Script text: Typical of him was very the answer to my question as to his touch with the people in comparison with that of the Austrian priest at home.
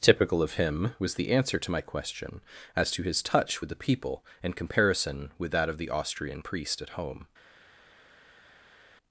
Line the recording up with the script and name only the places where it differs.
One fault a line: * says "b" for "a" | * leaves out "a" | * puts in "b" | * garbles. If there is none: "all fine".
* leaves out "very"